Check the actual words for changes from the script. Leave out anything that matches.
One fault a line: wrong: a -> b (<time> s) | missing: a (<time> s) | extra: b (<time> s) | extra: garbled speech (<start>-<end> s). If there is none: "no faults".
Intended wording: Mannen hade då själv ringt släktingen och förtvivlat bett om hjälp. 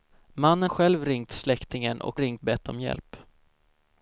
missing: hade då (0.7 s)
wrong: förtvivlat -> ringt (2.2 s)